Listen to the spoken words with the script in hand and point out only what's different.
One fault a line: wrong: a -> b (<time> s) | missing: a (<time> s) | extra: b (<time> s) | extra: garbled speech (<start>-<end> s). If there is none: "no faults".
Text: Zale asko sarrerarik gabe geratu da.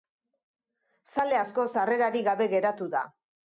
no faults